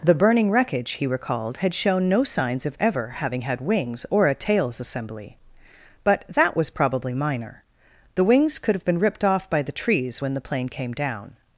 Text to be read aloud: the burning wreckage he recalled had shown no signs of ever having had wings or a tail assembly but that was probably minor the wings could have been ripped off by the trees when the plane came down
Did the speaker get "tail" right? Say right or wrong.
wrong